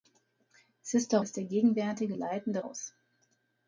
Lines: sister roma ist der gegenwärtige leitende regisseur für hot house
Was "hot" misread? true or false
true